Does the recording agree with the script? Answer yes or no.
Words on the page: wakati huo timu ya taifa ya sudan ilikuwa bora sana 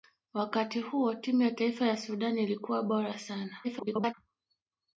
no